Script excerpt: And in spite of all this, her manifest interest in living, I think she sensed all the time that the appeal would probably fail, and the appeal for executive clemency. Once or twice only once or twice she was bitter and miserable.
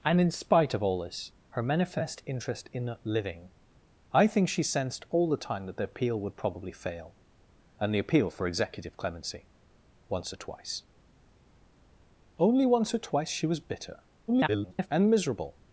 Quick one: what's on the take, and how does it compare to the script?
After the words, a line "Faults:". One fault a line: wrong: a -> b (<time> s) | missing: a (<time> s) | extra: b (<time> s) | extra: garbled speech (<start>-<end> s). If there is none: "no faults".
And in spite of all this, her manifest interest in living, I think she sensed all the time that the appeal would probably fail, and the appeal for executive clemency. Once or twice only once or twice she was bitter [garbled] and miserable.
Faults:
extra: garbled speech (14.3-14.9 s)